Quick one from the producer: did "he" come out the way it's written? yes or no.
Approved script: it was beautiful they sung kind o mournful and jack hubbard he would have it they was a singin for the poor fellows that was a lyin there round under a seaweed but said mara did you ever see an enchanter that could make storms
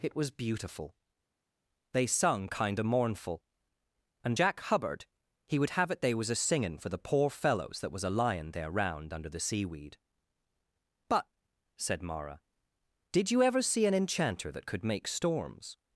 yes